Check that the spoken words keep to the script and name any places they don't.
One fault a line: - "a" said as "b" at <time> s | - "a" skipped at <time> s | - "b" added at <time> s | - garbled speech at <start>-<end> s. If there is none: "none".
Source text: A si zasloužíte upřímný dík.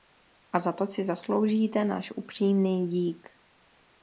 - "za to" added at 0.6 s
- "náš" added at 1.9 s